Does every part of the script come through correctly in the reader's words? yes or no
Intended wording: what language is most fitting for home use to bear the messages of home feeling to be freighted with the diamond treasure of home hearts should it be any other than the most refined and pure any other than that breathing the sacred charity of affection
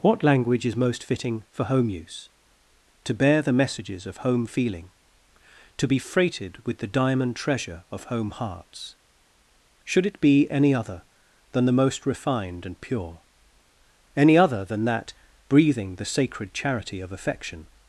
yes